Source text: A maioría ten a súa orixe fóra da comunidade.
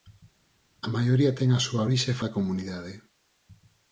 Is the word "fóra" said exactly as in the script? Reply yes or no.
no